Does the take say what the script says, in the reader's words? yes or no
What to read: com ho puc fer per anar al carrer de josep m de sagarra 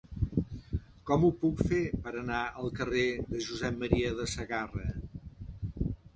yes